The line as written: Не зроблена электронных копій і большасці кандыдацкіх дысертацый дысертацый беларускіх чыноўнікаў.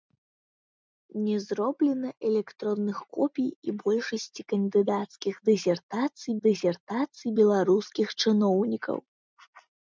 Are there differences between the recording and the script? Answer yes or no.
no